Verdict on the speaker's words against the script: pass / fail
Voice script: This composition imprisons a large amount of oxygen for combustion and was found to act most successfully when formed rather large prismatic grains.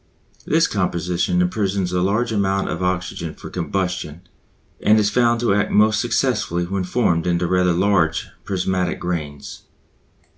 fail